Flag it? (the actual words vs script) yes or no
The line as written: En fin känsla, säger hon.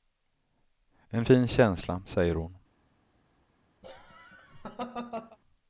no